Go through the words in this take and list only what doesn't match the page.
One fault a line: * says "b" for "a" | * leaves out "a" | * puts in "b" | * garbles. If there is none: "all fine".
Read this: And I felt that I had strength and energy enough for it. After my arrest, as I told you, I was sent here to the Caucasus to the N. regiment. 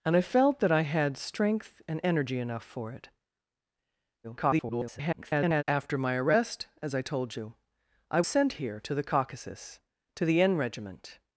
* garbles
* leaves out "was"